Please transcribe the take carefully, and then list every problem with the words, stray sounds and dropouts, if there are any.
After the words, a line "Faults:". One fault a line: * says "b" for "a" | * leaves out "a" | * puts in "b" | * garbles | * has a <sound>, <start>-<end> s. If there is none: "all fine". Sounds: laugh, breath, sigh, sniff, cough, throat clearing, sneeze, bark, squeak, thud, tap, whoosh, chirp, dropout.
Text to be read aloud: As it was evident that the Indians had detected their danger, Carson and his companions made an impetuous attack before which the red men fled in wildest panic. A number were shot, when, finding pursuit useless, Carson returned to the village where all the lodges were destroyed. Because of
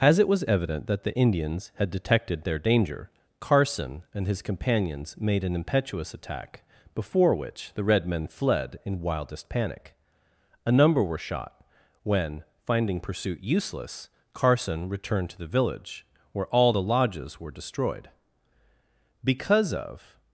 As it was evident that the Indians had detected their danger, Carson and his companions made an impetuous attack before which the red men fled in wildest panic. A number were shot, when, finding pursuit useless, Carson returned to the village where all the lodges were destroyed. Because of
Faults:
all fine